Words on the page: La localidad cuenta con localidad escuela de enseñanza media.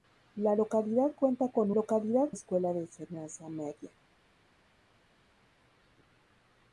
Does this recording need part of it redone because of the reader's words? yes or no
no